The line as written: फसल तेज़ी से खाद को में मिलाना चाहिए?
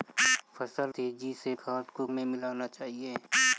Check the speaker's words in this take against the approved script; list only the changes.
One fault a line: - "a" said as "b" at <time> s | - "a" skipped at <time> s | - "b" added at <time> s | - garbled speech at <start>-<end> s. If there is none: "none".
none